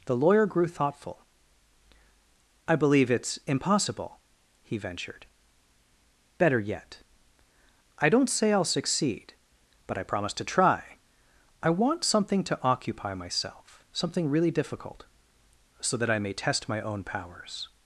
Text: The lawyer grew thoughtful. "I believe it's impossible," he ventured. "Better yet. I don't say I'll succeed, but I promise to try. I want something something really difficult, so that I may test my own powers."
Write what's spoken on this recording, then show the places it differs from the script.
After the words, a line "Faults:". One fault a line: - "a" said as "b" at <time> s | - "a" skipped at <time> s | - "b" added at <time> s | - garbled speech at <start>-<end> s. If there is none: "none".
The lawyer grew thoughtful. "I believe it's impossible," he ventured. "Better yet. I don't say I'll succeed, but I promise to try. I want something to occupy myself something really difficult, so that I may test my own powers."
Faults:
- "to occupy myself" added at 12.4 s